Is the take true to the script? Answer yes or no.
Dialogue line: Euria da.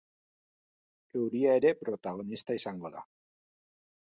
no